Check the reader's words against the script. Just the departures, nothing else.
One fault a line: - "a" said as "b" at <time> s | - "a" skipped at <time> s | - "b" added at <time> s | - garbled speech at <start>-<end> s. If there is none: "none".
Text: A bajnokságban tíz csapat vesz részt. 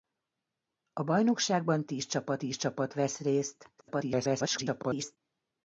- "tíz csapat" added at 2.4 s
- garbled speech at 3.8-5.2 s